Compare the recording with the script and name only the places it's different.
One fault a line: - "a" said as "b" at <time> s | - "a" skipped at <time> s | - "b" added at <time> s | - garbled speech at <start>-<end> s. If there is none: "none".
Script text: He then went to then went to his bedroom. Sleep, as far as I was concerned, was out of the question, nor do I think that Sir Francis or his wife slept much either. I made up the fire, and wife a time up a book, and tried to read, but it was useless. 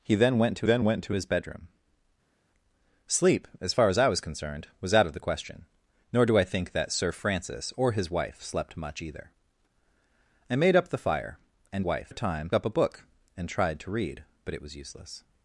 none